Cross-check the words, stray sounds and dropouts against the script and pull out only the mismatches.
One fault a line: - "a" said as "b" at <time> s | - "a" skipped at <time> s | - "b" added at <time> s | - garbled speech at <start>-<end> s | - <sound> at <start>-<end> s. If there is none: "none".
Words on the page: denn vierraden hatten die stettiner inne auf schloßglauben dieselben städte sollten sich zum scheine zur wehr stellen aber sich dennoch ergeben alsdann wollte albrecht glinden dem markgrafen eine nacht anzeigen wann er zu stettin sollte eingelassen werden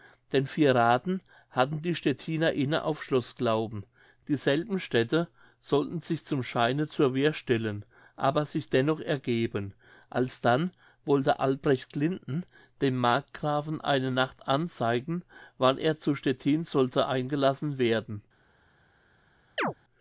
- chirp at 19.6-19.7 s